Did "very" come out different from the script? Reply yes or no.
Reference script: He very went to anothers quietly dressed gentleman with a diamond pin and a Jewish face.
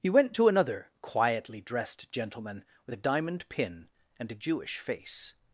yes